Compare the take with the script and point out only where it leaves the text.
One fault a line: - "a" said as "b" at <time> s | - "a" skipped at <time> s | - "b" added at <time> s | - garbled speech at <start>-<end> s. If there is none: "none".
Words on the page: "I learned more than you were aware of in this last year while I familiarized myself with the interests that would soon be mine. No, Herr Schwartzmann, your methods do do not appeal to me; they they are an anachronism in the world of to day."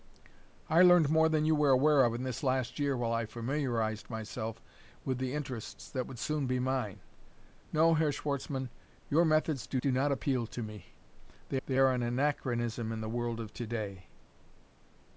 none